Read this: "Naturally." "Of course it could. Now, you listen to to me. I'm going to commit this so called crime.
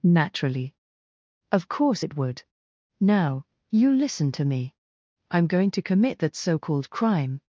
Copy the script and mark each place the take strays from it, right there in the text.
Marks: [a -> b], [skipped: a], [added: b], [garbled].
"Naturally." "Of course it [could. -> would] Now, you listen to [skipped: to] me. I'm going to commit [this -> that] so called crime.